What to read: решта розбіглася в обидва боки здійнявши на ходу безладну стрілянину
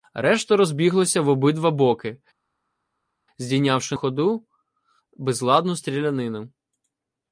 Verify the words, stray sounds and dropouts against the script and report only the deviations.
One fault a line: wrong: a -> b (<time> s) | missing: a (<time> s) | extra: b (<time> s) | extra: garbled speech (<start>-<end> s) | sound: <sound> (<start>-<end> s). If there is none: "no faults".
missing: на (3.9 s)